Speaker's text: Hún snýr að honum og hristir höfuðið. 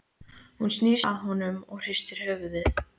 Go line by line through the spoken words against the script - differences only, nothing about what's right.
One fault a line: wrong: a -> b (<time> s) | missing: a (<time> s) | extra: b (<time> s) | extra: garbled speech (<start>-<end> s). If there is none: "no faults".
no faults